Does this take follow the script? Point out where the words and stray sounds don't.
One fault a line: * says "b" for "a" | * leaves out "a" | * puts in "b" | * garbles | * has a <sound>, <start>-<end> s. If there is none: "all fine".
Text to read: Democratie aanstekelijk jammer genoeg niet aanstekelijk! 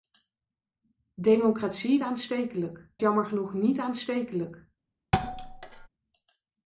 * has a thud, 5.1-5.9 s